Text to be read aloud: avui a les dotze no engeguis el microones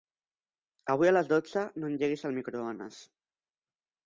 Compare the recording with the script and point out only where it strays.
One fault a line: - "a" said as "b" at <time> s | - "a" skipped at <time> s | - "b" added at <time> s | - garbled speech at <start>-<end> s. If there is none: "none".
none